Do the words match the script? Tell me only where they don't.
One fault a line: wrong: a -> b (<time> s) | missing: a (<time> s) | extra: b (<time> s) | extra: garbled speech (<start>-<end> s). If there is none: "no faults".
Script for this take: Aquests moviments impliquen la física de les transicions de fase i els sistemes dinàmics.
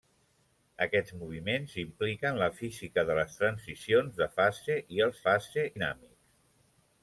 wrong: sistemes -> fase (5.3 s)